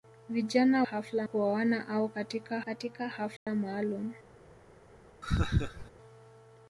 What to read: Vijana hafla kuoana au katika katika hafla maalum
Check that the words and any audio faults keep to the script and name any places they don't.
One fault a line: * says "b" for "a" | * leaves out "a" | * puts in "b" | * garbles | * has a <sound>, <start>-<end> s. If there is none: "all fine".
* has a dropout, 3.4-3.5 s
* has a laugh, 5.2-5.9 s